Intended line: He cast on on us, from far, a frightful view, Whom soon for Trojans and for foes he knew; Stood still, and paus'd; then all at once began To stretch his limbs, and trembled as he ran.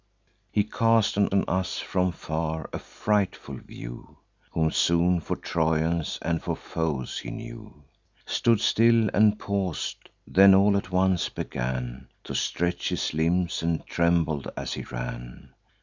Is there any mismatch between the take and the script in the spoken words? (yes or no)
no